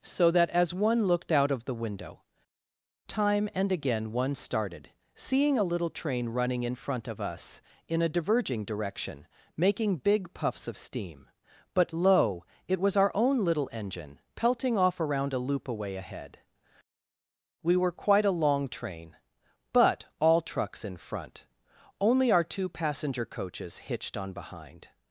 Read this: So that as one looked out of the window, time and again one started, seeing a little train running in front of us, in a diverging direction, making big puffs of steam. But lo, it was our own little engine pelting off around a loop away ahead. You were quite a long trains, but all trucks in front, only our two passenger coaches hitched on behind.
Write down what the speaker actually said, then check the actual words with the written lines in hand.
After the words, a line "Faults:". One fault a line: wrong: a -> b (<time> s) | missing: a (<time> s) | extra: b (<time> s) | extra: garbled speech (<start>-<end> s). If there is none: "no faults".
So that as one looked out of the window, time and again one started, seeing a little train running in front of us, in a diverging direction, making big puffs of steam. But lo, it was our own little engine pelting off around a loop away ahead. We were quite a long train, but all trucks in front, only our two passenger coaches hitched on behind.
Faults:
wrong: You -> We (17.6 s)
wrong: trains -> train (18.7 s)